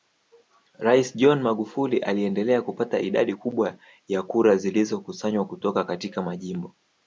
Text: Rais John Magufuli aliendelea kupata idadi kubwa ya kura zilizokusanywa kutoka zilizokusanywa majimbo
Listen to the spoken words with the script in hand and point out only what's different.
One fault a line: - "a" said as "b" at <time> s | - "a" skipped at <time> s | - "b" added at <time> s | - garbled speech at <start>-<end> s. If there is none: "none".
- "zilizokusanywa" said as "katika" at 5.8 s